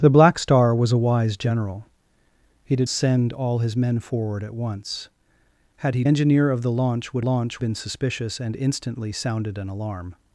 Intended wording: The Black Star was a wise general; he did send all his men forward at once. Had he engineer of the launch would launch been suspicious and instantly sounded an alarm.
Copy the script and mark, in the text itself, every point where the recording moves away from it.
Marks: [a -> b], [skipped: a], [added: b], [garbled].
The Black Star was a wise general; he did send all his men forward at once. Had he engineer of the launch would launch been suspicious and instantly sounded an alarm.